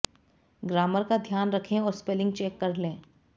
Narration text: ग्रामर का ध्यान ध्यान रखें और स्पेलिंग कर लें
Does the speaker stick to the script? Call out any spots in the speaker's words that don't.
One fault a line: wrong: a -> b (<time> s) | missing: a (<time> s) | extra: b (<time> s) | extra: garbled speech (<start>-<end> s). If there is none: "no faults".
missing: ध्यान (1.5 s)
extra: चेक (2.3 s)